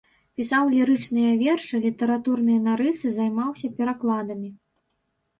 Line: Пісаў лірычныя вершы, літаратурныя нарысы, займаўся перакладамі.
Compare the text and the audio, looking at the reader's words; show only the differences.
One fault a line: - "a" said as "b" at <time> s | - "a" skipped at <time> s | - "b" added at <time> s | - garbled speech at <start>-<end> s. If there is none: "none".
none